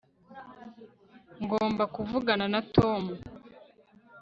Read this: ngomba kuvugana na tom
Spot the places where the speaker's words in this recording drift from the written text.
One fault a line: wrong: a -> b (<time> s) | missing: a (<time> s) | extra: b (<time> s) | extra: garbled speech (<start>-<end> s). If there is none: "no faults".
no faults